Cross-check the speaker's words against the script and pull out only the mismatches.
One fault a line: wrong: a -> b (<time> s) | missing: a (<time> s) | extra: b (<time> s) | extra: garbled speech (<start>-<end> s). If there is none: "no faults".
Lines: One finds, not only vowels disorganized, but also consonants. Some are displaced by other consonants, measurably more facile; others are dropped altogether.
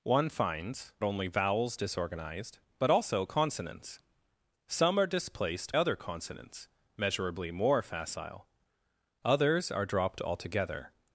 missing: not (0.9 s)
missing: by (5.8 s)